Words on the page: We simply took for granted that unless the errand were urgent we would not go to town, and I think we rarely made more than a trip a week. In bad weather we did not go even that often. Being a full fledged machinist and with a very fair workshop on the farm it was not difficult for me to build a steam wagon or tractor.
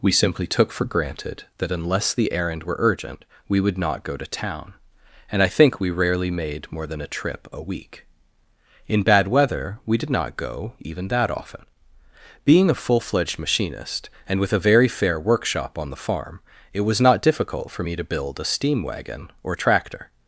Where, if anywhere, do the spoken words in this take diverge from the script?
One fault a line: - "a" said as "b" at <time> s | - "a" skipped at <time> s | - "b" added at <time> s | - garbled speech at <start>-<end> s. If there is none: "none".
none